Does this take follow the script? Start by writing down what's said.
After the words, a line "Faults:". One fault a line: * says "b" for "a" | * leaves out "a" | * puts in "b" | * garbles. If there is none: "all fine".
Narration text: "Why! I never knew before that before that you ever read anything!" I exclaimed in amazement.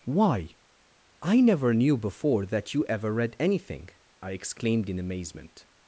"Why! I never knew before that you ever read anything!" I exclaimed in amazement.
Faults:
* leaves out "before that"